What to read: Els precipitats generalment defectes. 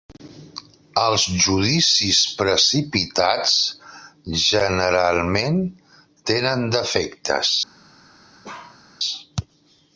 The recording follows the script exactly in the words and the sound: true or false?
false